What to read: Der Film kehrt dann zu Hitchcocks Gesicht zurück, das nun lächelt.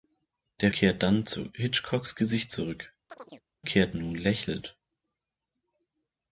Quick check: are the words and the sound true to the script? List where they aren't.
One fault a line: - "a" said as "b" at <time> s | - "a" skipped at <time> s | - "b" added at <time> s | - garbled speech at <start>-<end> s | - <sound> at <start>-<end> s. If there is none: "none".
- "Film" skipped at 0.7 s
- chirp at 3.1-3.4 s
- "das" said as "kehrt" at 3.6 s